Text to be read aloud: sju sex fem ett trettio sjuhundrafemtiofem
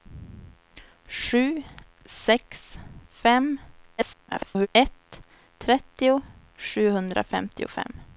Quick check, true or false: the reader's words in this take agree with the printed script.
false